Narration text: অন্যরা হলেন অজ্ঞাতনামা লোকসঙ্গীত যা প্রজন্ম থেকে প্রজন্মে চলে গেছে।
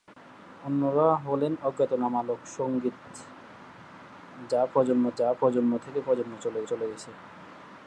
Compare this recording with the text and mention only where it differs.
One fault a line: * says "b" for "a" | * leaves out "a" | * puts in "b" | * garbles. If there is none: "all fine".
* puts in "যা প্রজন্ম"
* puts in "চলে"